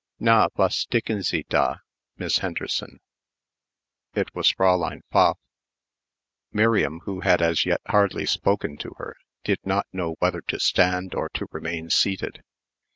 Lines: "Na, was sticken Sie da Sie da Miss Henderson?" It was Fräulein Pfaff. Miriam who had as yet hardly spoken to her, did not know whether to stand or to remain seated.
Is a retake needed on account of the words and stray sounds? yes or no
yes